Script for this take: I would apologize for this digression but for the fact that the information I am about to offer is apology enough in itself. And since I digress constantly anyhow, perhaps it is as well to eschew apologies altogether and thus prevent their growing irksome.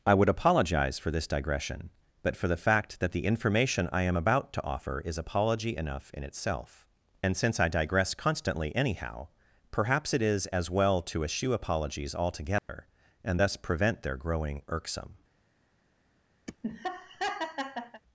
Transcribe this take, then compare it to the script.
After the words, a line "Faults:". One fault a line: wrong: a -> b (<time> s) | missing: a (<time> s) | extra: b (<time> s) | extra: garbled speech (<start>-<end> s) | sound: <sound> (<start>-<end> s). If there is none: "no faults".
I would apologize for this digression but for the fact that the information I am about to offer is apology enough in itself. And since I digress constantly anyhow, perhaps it is as well to eschew apologies altogether and thus prevent their growing irksome.
Faults:
sound: dropout (12.6-12.7 s)
sound: laugh (16.5-18.0 s)